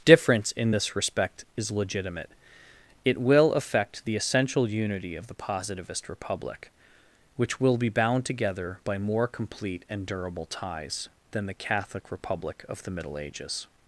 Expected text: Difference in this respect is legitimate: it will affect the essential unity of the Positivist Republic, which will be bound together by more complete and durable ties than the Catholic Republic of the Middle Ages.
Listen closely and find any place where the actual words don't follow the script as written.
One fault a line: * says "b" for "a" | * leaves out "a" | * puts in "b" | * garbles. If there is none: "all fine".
all fine